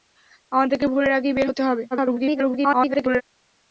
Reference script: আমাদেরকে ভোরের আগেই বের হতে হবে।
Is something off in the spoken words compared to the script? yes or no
yes